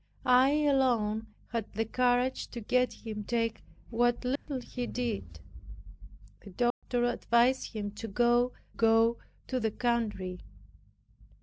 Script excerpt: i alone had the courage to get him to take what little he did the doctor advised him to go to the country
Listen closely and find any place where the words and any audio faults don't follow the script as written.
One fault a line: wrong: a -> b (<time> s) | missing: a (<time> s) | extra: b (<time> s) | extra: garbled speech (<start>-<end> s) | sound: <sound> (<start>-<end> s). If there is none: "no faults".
missing: to (3.3 s)
sound: dropout (4.4-4.5 s)
sound: dropout (6.7-6.8 s)
extra: go (8.7 s)